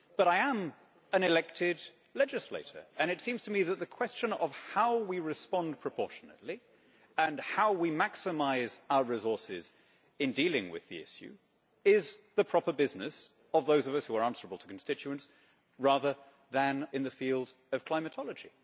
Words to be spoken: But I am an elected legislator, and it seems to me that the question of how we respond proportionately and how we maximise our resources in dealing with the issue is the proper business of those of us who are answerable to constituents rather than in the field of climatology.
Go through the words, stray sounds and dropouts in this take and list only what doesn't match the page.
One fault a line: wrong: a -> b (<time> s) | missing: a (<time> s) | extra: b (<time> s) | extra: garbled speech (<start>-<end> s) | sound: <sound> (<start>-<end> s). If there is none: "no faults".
no faults